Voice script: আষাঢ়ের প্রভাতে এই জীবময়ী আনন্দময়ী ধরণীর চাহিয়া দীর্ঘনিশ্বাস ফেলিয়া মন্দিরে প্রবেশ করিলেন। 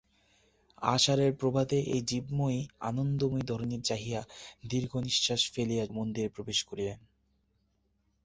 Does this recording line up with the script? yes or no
yes